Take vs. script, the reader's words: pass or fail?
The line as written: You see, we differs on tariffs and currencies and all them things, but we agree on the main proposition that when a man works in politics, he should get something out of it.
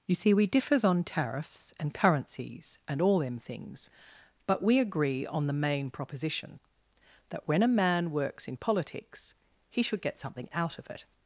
pass